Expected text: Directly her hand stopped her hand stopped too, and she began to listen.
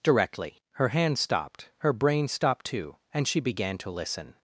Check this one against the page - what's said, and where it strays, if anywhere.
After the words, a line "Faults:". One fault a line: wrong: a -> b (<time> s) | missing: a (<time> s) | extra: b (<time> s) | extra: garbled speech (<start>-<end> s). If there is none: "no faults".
Directly her hand stopped her brain stopped too, and she began to listen.
Faults:
wrong: hand -> brain (1.9 s)